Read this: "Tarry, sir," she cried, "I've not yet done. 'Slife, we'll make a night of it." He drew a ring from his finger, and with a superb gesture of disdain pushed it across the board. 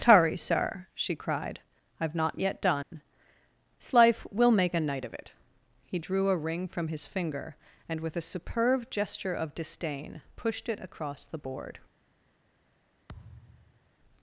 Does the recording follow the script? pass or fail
pass